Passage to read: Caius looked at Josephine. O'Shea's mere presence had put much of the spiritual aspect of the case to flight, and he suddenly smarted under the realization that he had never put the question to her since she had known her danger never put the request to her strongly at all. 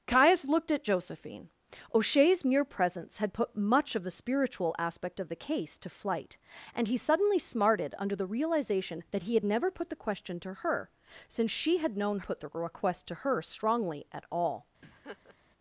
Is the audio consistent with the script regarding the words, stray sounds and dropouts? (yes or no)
no